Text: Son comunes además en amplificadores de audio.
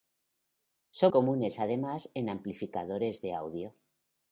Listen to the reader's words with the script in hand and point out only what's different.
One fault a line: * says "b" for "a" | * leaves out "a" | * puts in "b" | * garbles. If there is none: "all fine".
all fine